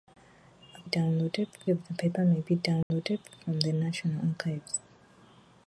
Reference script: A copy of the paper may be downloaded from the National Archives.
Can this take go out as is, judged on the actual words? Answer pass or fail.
fail